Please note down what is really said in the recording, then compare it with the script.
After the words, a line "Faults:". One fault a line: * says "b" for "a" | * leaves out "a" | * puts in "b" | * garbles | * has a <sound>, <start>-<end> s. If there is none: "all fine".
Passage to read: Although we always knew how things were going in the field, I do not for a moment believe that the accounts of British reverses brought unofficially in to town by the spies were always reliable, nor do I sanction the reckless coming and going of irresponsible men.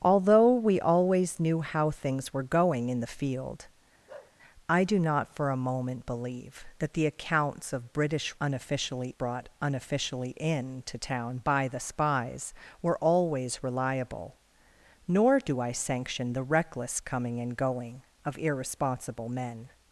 Although we always knew how things were going in the field, I do not for a moment believe that the accounts of British unofficially brought unofficially in to town by the spies were always reliable, nor do I sanction the reckless coming and going of irresponsible men.
Faults:
* has a bark, 4.1-4.4 s
* says "unofficially" for "reverses"